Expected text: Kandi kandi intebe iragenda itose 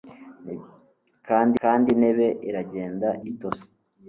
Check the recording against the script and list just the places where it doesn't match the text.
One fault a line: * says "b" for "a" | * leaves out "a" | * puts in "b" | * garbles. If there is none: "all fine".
all fine